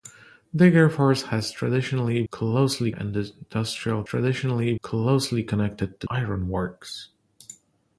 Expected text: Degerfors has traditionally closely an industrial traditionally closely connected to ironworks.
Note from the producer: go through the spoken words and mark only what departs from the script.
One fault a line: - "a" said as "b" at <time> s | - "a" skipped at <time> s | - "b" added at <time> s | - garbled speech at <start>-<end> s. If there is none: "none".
none